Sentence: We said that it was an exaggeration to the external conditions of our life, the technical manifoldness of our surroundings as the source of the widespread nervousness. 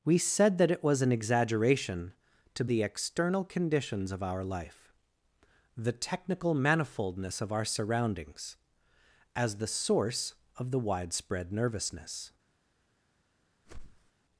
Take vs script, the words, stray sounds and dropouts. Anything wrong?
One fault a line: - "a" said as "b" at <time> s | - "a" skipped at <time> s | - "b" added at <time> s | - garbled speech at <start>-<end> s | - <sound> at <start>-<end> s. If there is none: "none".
- whoosh at 13.6-14.1 s